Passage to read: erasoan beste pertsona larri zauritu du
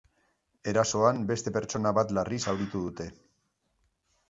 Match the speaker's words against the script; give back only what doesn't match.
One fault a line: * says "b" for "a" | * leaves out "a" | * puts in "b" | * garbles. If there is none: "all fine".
* puts in "bat"
* says "dute" for "du"